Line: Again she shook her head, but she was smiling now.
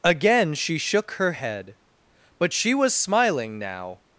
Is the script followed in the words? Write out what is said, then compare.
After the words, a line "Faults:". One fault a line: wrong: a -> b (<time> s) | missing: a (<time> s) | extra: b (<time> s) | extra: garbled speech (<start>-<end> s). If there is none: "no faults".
Again she shook her head, but she was smiling now.
Faults:
no faults